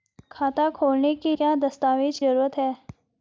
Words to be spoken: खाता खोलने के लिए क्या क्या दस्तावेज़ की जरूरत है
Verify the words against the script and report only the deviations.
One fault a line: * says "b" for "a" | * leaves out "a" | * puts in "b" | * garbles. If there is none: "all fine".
* leaves out "लिए"
* leaves out "क्या"
* leaves out "की"